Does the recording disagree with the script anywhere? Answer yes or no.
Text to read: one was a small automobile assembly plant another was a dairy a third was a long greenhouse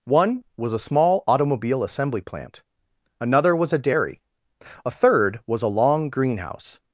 no